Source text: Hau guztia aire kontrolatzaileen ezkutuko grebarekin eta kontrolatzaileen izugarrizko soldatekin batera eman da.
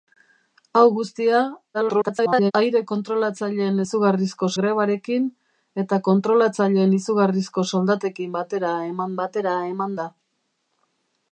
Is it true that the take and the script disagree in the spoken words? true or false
true